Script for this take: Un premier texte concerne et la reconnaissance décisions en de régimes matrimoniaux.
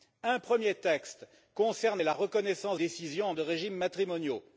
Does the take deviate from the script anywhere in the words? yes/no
no